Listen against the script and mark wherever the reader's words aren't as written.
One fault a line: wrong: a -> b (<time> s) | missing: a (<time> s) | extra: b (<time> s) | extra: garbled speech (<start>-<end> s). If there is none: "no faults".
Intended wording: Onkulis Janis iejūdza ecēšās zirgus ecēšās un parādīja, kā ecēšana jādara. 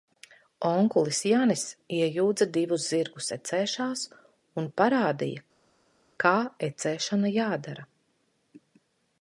wrong: ecēšās -> divus (2.5 s)